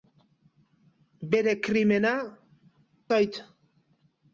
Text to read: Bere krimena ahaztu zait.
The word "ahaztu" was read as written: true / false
false